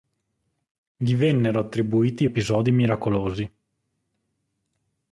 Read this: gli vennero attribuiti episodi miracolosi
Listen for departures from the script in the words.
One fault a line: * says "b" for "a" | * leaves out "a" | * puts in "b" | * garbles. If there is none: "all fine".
all fine